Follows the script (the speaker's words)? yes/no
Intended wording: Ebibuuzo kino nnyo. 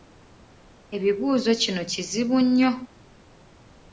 no